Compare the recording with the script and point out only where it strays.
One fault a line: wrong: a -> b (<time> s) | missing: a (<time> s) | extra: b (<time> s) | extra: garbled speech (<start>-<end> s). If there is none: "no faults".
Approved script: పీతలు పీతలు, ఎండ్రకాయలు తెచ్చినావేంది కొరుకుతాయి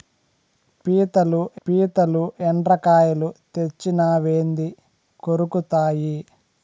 no faults